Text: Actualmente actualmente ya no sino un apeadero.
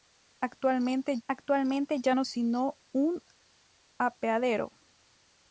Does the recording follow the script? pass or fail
pass